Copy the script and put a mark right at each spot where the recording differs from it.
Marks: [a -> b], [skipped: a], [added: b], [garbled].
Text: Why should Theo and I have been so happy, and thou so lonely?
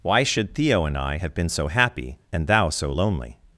Why should Theo and I have been so happy, and thou so lonely?